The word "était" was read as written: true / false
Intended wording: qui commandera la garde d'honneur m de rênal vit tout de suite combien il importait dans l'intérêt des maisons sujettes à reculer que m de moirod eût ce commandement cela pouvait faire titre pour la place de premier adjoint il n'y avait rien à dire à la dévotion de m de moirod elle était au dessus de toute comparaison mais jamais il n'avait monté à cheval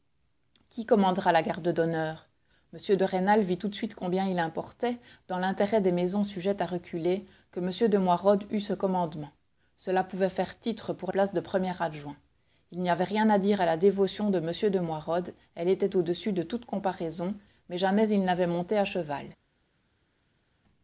true